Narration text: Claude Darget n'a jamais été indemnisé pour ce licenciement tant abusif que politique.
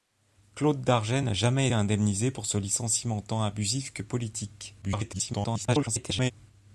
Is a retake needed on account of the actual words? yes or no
yes